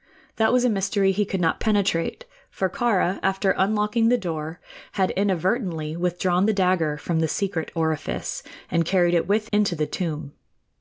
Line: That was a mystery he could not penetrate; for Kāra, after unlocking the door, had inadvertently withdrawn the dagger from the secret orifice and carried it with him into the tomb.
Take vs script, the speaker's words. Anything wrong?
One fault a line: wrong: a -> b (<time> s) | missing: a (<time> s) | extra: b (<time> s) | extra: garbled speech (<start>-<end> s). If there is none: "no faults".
missing: him (9.5 s)